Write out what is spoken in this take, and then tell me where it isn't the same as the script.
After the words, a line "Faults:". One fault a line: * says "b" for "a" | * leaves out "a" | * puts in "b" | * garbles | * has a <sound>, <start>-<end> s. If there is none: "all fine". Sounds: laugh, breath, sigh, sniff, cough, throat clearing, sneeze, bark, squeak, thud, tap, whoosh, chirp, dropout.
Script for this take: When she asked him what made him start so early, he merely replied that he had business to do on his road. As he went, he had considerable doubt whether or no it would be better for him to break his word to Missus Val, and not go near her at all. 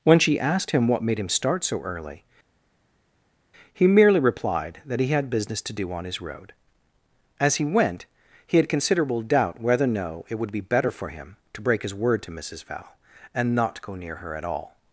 When she asked him what made him start so early, he merely replied that he had business to do on his road. As he went, he had considerable doubt whether or no it would be better for him to break his word to Missus Val, and not go near her at all.
Faults:
all fine